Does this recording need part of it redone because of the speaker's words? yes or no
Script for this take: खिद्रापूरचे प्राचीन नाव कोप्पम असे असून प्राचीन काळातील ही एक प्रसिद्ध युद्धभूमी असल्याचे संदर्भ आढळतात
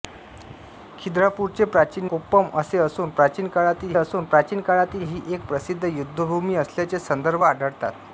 yes